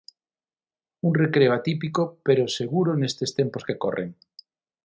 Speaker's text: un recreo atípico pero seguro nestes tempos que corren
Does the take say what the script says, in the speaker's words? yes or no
yes